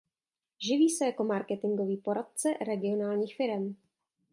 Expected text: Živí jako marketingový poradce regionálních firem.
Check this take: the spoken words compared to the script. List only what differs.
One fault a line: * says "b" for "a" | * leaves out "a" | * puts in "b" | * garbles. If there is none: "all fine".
* puts in "se"